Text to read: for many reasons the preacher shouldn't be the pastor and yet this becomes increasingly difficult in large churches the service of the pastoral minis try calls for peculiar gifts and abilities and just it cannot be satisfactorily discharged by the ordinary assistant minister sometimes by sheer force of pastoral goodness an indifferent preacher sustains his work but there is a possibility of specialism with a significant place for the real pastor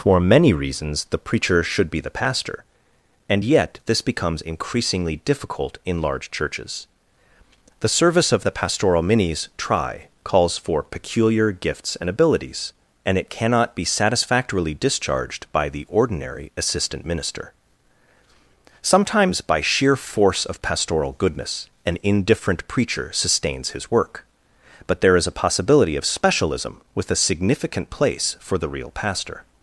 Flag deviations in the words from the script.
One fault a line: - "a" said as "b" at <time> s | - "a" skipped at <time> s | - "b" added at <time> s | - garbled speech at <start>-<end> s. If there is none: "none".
- "shouldn't" said as "should" at 1.6 s
- "just" skipped at 13.2 s